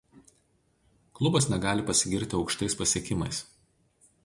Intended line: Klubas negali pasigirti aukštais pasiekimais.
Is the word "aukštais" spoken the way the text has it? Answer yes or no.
yes